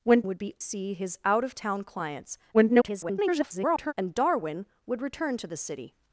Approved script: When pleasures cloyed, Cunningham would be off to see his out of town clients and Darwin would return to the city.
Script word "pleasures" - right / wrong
wrong